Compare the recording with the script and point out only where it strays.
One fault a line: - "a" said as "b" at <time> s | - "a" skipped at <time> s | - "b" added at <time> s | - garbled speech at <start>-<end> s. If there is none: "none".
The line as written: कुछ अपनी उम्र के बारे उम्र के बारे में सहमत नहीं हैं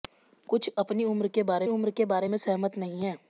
none